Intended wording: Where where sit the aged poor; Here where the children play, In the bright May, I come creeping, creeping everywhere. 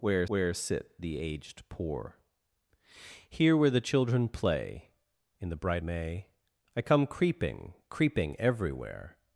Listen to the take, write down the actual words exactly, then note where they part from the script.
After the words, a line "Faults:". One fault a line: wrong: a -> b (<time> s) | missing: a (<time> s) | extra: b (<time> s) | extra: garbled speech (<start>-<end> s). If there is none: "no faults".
Where where sit the aged poor; Here where the children play, In the bright May, I come creeping, creeping everywhere.
Faults:
no faults